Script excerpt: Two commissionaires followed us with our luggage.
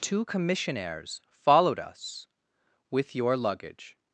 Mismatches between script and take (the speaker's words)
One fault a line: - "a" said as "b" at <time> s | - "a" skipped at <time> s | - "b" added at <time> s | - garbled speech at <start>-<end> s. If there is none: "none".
- "our" said as "your" at 3.1 s